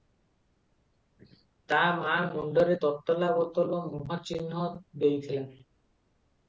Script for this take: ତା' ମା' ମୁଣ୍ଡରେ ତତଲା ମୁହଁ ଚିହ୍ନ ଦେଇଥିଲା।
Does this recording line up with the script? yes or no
no